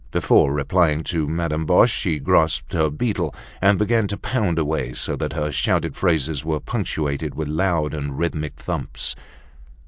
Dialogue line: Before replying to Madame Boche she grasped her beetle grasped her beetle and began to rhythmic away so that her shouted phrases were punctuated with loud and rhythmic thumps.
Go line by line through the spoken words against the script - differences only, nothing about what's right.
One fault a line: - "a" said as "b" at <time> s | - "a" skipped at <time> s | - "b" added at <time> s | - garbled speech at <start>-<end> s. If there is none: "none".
- "grasped her beetle" skipped at 3.4 s
- "rhythmic" said as "pound" at 4.2 s